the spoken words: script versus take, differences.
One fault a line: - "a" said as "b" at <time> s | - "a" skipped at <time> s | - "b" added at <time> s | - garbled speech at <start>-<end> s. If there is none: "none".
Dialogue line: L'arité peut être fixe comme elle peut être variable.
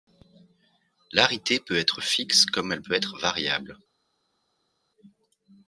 none